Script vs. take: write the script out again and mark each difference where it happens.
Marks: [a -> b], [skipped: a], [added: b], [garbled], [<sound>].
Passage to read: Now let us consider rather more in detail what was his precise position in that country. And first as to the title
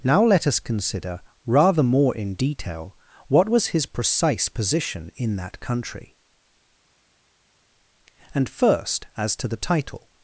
Now let us consider rather more in detail what was his precise position in that country. And first as to the title